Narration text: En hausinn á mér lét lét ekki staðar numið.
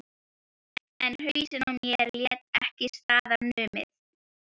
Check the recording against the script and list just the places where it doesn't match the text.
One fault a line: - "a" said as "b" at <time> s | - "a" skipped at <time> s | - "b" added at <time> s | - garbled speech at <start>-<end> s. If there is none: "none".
- "lét" skipped at 2.4 s